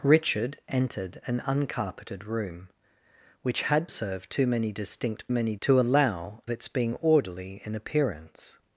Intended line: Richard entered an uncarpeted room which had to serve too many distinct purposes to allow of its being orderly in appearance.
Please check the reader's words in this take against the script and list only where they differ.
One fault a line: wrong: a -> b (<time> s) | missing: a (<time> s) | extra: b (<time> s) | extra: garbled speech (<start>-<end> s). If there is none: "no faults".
missing: to (3.9 s)
wrong: purposes -> many (5.3 s)
missing: of (6.4 s)